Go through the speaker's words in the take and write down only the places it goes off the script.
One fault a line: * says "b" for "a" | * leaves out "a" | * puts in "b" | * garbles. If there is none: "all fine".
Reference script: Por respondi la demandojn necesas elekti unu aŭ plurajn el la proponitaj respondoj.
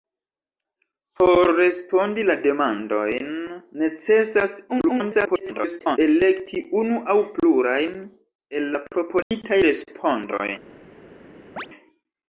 * garbles